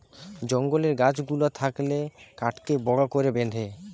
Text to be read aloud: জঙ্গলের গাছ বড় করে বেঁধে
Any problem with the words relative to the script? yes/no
yes